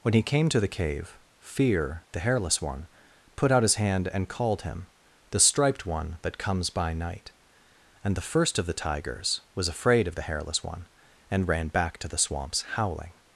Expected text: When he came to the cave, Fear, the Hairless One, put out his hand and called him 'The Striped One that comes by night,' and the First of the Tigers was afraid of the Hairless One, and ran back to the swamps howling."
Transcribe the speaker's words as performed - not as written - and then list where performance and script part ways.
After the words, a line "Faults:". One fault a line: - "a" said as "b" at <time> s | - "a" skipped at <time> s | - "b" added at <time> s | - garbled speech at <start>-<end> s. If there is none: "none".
When he came to the cave, Fear, the Hairless One, put out his hand and called him 'The Striped One that comes by night,' and the First of the Tigers was afraid of the Hairless One, and ran back to the swamps howling."
Faults:
none